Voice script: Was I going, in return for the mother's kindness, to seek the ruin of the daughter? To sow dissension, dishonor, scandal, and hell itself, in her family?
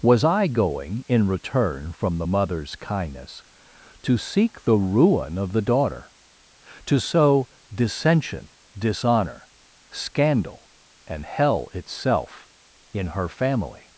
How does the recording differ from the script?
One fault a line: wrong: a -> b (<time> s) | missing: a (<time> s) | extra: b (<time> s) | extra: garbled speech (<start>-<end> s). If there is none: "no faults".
wrong: for -> from (1.9 s)